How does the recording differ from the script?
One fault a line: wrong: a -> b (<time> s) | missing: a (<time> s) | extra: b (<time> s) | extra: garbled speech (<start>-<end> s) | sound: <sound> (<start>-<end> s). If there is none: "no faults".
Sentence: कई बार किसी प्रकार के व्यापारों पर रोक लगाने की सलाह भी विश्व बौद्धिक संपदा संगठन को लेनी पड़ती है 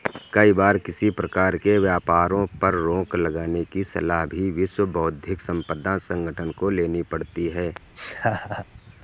sound: laugh (8.0-8.7 s)